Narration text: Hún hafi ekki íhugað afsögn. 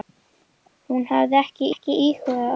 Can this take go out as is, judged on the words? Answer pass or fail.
fail